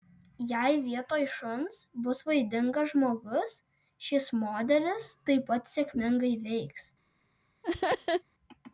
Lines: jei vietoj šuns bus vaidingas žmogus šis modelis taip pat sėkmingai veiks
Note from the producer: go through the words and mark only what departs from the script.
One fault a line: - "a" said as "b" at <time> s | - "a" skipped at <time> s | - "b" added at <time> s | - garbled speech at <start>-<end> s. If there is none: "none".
none